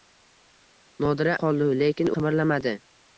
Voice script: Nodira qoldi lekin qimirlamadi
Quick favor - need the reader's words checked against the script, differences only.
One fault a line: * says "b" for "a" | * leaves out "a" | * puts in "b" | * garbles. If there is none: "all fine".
all fine